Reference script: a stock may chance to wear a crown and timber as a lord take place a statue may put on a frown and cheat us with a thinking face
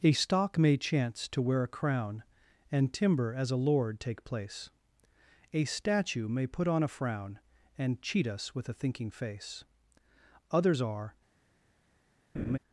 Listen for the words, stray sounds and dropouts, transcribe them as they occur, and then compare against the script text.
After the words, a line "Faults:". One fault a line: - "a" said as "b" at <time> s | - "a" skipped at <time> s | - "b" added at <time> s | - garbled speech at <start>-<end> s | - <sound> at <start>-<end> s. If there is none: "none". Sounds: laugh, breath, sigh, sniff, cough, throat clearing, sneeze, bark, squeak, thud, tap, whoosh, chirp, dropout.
a stock may chance to wear a crown and timber as a lord take place a statue may put on a frown and cheat us with a thinking face others are
Faults:
- "others are" added at 10.5 s
- laugh at 12.3-12.6 s